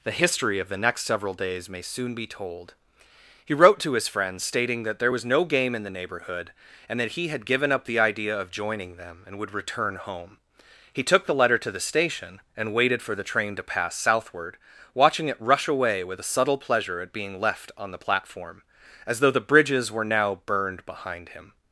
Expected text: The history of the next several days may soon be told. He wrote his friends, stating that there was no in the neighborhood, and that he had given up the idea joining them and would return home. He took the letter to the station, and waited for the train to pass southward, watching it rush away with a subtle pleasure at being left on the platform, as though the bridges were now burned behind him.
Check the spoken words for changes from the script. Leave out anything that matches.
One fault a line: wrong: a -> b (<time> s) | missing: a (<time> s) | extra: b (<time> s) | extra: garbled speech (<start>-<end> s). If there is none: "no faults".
extra: to (3.8 s)
extra: game (5.4 s)
extra: of (8.4 s)